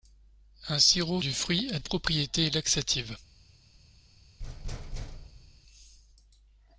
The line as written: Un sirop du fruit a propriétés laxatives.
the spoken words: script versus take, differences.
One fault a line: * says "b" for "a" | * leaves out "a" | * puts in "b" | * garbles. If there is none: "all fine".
all fine